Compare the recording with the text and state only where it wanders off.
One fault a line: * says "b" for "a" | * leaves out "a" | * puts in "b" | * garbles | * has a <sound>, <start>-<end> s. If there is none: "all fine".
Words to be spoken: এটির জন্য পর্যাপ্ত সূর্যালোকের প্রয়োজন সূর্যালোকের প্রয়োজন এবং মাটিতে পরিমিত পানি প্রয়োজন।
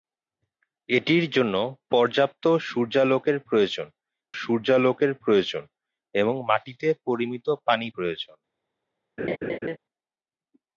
* has a laugh, 9.2-9.8 s